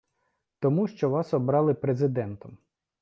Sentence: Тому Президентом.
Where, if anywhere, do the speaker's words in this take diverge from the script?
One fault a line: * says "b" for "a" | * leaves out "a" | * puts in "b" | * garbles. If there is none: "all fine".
* puts in "що Вас обрали"